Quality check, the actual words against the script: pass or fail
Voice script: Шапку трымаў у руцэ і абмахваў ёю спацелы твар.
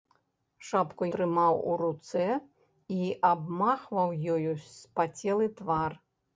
pass